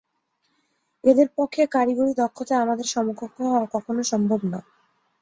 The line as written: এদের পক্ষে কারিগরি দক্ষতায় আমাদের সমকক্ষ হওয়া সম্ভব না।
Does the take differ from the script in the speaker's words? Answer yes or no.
yes